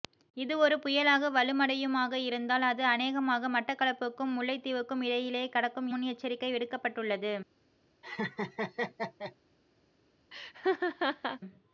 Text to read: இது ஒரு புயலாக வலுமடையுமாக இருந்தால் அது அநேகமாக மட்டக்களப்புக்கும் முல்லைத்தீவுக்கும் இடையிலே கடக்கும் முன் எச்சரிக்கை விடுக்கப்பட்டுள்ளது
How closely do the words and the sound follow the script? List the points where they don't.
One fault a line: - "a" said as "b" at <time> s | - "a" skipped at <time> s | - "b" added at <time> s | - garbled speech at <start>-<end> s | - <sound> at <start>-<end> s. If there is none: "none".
- laugh at 8.0-9.4 s
- laugh at 10.3-11.4 s